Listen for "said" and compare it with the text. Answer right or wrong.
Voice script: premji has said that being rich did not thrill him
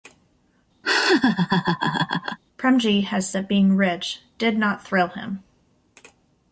wrong